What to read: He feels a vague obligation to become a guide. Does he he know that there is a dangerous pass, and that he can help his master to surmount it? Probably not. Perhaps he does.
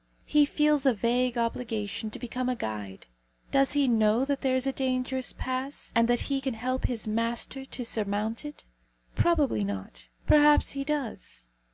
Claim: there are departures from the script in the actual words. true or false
true